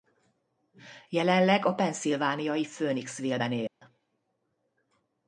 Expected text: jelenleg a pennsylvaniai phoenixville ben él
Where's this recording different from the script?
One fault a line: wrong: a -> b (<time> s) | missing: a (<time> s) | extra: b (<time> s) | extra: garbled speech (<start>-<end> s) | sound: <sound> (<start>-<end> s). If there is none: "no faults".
sound: dropout (3.7-3.8 s)